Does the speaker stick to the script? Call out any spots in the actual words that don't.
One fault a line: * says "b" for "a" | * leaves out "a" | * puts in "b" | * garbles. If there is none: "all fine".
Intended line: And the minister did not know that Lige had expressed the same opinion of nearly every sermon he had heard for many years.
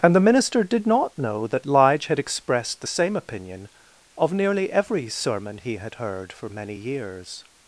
all fine